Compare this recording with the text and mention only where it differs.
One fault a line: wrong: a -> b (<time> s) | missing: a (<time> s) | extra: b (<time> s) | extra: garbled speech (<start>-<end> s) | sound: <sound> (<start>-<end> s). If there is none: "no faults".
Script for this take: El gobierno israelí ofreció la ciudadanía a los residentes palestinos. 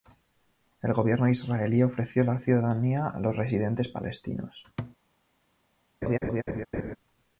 sound: thud (4.8-5.0 s)
sound: laugh (6.0-7.0 s)